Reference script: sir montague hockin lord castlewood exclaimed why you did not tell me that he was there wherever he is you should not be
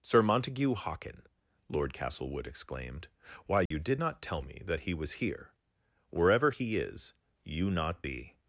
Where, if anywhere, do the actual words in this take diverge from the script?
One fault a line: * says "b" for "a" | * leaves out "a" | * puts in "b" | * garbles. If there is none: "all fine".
* says "here" for "there"
* leaves out "should"